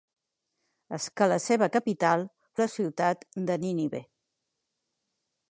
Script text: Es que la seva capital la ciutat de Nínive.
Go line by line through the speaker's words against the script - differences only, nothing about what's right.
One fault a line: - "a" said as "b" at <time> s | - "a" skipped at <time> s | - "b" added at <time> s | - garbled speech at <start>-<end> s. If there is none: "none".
none